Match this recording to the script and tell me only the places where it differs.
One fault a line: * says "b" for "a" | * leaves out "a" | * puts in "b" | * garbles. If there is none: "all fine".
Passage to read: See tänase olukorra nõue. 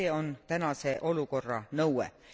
* puts in "on"